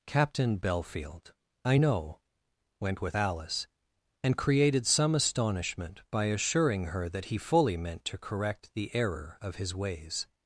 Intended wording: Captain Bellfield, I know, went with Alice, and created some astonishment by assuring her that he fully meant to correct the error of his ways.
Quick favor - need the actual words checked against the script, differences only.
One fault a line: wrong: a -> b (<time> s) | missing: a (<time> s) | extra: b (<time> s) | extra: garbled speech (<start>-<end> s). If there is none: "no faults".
no faults